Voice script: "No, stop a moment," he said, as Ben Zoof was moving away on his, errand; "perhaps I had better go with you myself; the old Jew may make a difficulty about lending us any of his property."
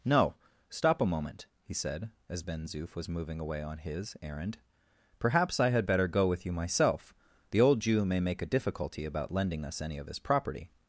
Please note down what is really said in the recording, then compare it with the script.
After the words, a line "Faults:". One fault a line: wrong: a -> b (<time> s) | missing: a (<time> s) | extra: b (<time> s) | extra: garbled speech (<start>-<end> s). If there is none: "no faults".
"No, stop a moment," he said, as Ben Zoof was moving away on his, errand; "perhaps I had better go with you myself; the old Jew may make a difficulty about lending us any of his property."
Faults:
no faults